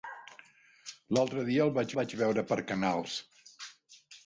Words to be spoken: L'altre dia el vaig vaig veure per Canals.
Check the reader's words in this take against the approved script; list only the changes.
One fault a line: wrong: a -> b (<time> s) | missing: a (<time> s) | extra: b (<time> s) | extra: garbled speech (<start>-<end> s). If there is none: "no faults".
no faults